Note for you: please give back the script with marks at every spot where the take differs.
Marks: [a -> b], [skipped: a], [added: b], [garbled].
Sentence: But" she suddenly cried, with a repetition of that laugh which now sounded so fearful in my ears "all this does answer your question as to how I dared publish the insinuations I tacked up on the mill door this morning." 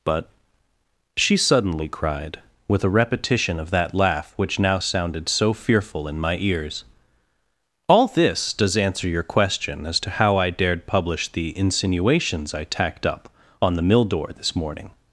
But" she suddenly cried, with a repetition of that laugh which now sounded so fearful in my ears "all this does answer your question as to how I dared publish the insinuations I tacked up on the mill door this morning."